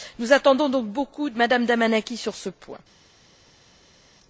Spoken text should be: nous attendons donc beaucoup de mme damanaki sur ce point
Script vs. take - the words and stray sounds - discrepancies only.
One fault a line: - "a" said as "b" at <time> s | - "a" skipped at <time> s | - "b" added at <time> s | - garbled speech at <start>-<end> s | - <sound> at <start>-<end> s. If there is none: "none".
none